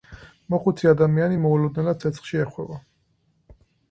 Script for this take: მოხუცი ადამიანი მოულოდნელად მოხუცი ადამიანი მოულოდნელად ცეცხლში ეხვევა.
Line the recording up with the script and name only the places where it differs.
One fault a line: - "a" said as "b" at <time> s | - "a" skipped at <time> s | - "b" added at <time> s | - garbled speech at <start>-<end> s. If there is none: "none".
- "მოხუცი ადამიანი მოულოდნელად" skipped at 2.0 s